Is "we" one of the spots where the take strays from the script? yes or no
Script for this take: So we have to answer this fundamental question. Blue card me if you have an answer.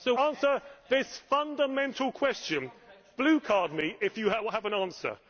yes